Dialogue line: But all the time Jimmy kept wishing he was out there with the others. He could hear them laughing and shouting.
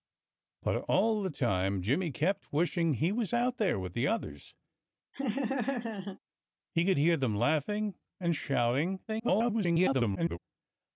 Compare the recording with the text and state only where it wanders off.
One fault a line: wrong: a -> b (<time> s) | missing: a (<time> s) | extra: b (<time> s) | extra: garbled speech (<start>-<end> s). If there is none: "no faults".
extra: garbled speech (9.1-10.4 s)